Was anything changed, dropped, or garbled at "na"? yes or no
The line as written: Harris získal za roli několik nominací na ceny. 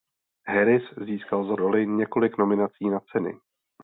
no